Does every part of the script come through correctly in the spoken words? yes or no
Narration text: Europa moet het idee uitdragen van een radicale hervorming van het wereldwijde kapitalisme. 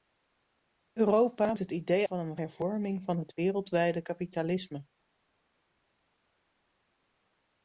no